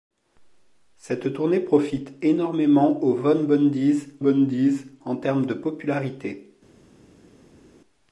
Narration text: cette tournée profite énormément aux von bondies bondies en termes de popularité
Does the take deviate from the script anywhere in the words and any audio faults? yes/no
no